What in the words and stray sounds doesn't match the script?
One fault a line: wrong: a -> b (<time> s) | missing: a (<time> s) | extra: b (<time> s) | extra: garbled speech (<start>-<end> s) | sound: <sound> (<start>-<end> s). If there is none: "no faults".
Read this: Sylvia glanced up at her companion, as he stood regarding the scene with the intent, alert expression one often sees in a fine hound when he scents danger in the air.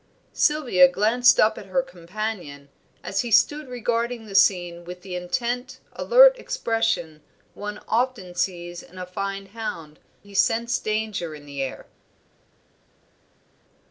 missing: when (10.0 s)